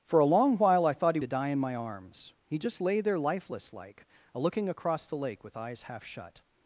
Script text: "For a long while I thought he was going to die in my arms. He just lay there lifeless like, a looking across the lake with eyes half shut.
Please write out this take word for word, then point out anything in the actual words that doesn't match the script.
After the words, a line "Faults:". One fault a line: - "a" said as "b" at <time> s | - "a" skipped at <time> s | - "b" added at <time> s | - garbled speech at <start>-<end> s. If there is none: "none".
"For a long while I thought he to die in my arms. He just lay there lifeless like, a looking across the lake with eyes half shut.
Faults:
- "was going" skipped at 1.2 s